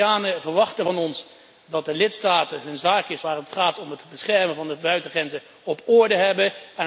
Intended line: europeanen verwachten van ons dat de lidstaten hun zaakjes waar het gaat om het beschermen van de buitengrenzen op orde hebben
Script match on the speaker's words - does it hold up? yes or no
yes